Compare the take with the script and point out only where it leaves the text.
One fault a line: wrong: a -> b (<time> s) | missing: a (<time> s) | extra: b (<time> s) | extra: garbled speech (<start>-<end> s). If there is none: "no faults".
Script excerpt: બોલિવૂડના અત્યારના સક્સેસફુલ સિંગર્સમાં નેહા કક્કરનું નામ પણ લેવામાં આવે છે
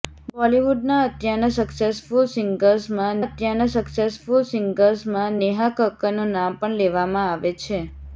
extra: અત્યારના સક્સેસફુલ સિંગર્સમાં (3.2 s)